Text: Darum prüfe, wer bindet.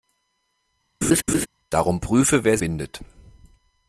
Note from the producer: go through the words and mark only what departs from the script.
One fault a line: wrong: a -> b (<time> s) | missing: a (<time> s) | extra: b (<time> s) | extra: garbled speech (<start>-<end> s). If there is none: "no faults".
no faults